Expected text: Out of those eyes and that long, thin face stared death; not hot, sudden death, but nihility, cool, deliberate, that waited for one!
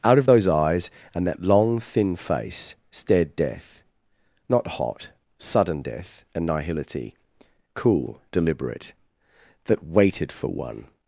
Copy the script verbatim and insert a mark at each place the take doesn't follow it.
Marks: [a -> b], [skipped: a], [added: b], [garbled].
Out of those eyes and that long, thin face stared death; not hot, sudden death, [but -> and] nihility, cool, deliberate, that waited for one!